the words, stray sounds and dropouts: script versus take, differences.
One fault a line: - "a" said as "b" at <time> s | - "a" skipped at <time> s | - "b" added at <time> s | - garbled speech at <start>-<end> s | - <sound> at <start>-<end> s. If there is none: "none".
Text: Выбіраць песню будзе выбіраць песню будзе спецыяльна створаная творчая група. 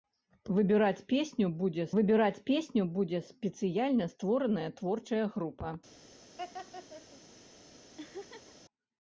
- laugh at 6.4-7.2 s
- laugh at 8.0-8.6 s